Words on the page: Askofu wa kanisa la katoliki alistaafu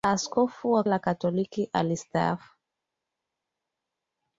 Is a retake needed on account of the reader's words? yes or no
yes